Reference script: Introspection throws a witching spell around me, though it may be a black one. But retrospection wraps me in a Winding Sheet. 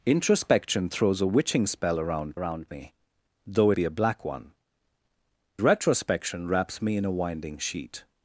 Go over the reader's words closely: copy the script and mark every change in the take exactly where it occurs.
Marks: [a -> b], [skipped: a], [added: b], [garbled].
Introspection throws a witching spell around [added: around] me, though [skipped: it may] be a black one. [skipped: But] retrospection wraps me in a Winding Sheet.